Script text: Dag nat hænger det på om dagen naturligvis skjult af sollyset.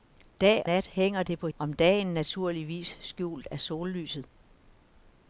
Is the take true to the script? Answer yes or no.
yes